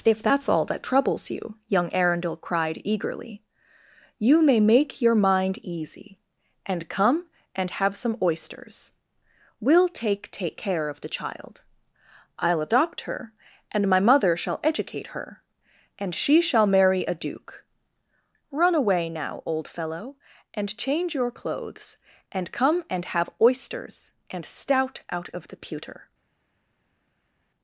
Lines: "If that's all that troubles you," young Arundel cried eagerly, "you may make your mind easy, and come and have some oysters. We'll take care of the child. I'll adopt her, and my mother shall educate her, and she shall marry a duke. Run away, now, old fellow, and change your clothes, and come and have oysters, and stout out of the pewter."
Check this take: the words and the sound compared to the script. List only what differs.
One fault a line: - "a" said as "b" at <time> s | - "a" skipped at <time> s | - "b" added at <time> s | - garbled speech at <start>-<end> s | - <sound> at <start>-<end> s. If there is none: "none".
- "take" added at 10.3 s